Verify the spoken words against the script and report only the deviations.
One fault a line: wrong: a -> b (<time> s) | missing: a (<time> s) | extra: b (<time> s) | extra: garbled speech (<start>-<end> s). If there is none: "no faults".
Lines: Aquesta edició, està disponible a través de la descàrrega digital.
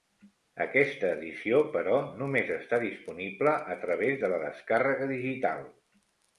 extra: però només (1.8 s)